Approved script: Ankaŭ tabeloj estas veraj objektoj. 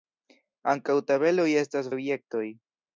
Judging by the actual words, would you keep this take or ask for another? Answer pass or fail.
fail